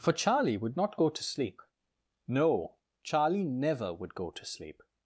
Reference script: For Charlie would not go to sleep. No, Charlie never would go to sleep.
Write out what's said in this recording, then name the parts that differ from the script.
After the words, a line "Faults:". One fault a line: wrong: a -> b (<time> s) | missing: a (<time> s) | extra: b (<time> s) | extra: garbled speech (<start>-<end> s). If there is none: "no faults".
For Charlie would not go to sleep. No, Charlie never would go to sleep.
Faults:
no faults